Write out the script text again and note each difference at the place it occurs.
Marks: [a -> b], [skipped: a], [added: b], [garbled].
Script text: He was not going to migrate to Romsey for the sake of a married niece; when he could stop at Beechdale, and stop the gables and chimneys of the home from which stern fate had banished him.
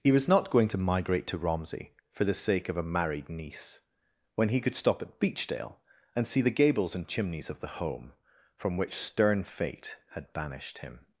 He was not going to migrate to Romsey for the sake of a married niece; when he could stop at Beechdale, and [stop -> see] the gables and chimneys of the home from which stern fate had banished him.